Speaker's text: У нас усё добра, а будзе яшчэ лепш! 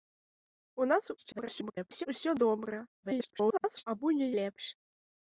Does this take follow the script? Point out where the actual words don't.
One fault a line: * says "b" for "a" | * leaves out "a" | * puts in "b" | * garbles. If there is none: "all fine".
* garbles
* garbles
* leaves out "яшчэ"